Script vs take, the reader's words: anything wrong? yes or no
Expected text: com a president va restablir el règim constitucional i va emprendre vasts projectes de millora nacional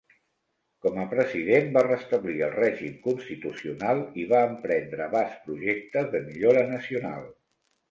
no